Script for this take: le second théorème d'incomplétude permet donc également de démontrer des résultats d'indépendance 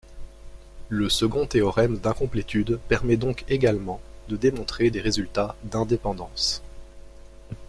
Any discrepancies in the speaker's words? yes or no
no